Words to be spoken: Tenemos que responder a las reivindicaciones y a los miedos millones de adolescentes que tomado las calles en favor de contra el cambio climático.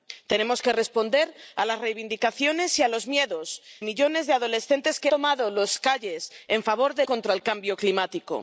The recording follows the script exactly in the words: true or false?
true